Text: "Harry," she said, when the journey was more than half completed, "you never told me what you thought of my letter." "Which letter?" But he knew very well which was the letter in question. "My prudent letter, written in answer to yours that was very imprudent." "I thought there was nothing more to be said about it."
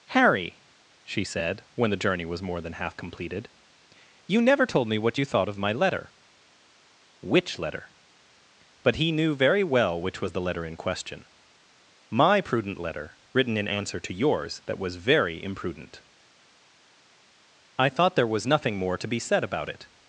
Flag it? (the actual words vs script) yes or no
no